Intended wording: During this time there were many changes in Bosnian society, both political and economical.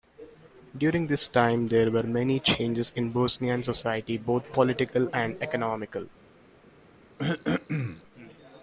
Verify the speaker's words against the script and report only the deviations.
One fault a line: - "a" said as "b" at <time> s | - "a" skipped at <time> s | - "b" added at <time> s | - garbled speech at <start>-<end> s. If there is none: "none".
none